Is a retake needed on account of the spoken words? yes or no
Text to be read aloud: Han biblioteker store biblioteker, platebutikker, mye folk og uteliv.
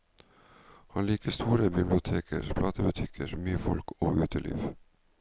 yes